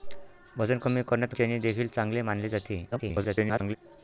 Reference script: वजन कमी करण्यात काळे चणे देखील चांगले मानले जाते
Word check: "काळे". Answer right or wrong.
wrong